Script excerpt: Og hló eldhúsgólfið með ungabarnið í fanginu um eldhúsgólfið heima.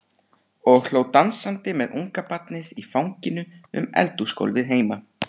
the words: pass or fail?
fail